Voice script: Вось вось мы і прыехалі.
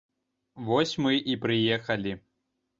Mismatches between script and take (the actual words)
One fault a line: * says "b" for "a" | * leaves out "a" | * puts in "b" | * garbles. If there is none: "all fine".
* leaves out "вось"